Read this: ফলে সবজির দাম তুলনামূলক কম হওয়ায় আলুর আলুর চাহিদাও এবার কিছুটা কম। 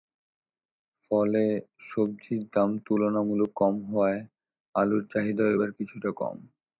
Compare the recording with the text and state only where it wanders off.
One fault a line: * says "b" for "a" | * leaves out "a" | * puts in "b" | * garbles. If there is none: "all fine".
* leaves out "আলুর"